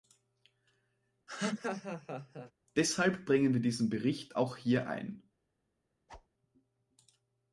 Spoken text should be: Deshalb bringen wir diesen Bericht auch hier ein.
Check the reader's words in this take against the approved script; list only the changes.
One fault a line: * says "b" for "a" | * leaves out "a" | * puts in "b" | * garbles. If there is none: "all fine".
all fine